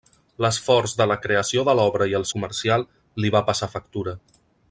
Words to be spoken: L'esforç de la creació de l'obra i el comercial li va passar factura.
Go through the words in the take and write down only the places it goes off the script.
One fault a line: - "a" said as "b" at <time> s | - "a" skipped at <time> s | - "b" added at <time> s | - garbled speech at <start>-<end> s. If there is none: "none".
none